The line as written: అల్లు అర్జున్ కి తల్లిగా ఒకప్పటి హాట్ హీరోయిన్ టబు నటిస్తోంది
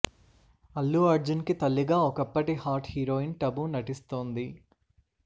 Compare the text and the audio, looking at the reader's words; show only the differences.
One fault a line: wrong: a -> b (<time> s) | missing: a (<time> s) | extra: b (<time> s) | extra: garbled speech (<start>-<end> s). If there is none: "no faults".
no faults